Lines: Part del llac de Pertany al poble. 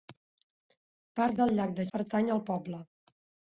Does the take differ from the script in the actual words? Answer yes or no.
no